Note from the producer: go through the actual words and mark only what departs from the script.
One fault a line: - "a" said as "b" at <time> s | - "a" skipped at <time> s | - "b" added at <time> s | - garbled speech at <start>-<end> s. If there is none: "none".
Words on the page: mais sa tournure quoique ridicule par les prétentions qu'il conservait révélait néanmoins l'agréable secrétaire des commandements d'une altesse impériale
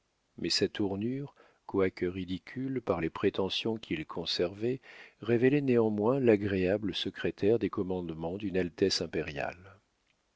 none